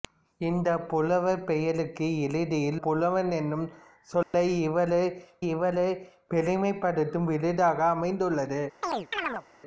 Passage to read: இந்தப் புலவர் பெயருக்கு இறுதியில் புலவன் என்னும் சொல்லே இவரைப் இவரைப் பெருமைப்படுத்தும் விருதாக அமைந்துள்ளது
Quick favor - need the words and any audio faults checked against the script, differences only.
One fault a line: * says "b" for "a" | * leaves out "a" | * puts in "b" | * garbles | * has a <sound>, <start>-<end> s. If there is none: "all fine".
* has a dropout, 4.2-4.3 s
* has a chirp, 8.8-9.5 s